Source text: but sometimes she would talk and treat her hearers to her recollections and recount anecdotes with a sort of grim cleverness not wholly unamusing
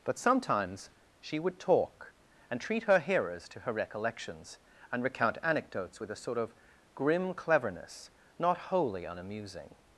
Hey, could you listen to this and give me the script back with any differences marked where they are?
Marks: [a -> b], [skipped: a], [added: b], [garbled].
but sometimes she would talk and treat her hearers to her recollections and recount anecdotes with a sort of grim cleverness not wholly unamusing